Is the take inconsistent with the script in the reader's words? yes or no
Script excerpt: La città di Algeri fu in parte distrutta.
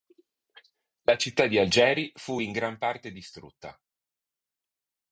yes